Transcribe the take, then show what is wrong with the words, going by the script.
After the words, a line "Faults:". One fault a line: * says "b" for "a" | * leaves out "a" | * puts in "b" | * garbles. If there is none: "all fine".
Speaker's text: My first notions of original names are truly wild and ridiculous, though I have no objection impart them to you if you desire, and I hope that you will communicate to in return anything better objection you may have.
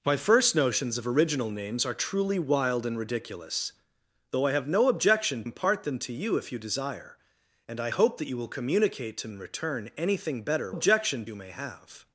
My first notions of original names are truly wild and ridiculous, though I have no objection impart them to you if you desire, and I hope that you will communicate to in return anything better objection you may have.
Faults:
all fine